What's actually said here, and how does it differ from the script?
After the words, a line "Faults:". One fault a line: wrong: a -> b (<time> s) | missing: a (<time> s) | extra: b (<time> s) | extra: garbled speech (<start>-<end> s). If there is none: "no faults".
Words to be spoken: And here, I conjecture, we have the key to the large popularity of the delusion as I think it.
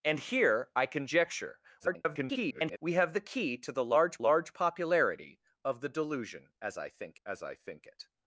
And here, I conjecture, [garbled] we have the key to the large large popularity of the delusion as I think as I think it.
Faults:
extra: garbled speech (1.8-2.8 s)
extra: large (4.2 s)
extra: as I think (7.2 s)